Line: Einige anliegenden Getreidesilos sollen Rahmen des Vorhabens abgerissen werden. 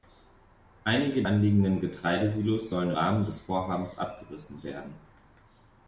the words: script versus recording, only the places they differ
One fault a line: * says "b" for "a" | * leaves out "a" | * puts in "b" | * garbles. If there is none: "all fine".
all fine